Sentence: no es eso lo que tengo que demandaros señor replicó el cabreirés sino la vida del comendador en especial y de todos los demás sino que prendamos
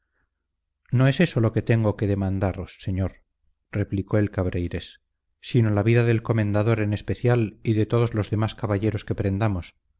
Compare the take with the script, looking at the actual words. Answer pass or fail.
fail